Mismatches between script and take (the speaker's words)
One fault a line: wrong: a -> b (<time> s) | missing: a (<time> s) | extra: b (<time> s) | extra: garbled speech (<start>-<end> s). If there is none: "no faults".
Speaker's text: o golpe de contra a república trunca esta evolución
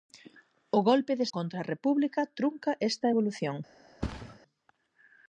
no faults